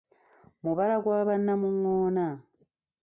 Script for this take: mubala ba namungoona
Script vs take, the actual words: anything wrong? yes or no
yes